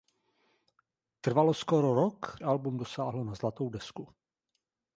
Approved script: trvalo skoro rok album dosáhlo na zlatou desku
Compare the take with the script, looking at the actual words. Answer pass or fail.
pass